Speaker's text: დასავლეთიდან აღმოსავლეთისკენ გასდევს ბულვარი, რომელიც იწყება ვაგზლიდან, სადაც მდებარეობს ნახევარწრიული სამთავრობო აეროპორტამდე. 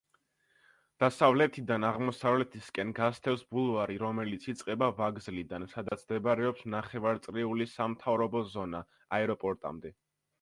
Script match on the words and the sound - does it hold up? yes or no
no